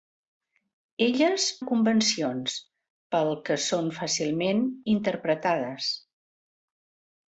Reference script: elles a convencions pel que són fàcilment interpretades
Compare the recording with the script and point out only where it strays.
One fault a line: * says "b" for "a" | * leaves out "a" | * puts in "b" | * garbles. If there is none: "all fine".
all fine